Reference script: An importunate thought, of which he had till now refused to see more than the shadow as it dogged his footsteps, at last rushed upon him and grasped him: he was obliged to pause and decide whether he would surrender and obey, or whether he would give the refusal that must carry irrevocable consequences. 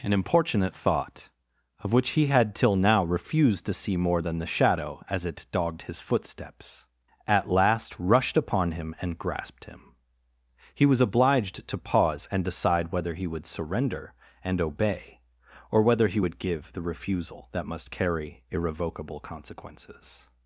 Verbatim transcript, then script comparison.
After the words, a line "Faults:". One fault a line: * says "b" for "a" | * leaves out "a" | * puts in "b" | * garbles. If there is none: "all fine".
An importunate thought, of which he had till now refused to see more than the shadow as it dogged his footsteps, at last rushed upon him and grasped him: he was obliged to pause and decide whether he would surrender and obey, or whether he would give the refusal that must carry irrevocable consequences.
Faults:
all fine